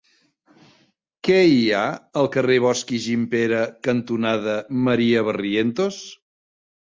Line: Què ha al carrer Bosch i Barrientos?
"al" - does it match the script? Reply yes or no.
yes